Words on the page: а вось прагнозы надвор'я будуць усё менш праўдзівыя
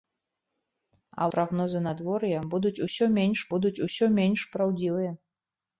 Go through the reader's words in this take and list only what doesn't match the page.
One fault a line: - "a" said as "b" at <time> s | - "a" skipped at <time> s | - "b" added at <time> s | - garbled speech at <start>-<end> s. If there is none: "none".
- "вось" skipped at 1.3 s
- "будуць усё менш" added at 3.5 s